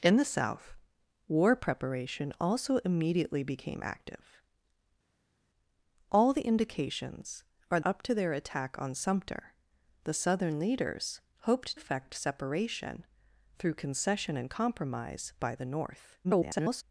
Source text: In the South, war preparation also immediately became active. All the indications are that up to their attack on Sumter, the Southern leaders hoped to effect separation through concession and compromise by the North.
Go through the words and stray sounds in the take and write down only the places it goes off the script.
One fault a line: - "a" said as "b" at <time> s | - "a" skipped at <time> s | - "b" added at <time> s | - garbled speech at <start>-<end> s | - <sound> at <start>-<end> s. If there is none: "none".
- "that" skipped at 7.8 s
- "to" skipped at 11.8 s
- garbled speech at 16.2-16.8 s